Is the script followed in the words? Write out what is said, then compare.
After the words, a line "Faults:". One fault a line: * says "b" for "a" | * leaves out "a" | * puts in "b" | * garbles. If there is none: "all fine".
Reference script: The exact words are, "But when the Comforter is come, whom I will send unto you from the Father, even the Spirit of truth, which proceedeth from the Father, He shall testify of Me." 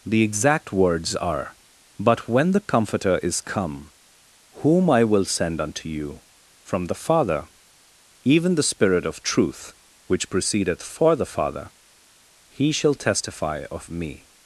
The exact words are, "But when the Comforter is come, whom I will send unto you from the Father, even the Spirit of truth, which proceedeth for the Father, He shall testify of Me."
Faults:
* says "for" for "from"